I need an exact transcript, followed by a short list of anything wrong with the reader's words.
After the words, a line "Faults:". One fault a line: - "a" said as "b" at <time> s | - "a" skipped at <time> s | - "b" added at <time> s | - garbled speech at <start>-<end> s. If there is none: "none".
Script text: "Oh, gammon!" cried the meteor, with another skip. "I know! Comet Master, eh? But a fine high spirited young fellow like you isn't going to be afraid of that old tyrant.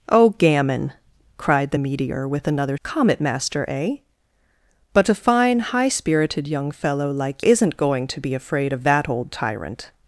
"Oh, gammon!" cried the meteor, with another! Comet Master, eh? But a fine high spirited young fellow like isn't going to be afraid of that old tyrant.
Faults:
- "skip I know" skipped at 2.8 s
- "you" skipped at 7.4 s